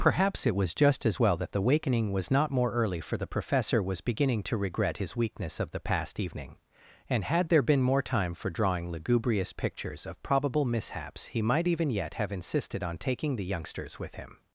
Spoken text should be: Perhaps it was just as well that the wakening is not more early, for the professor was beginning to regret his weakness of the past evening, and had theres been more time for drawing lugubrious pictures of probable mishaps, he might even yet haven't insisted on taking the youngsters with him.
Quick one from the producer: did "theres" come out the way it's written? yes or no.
no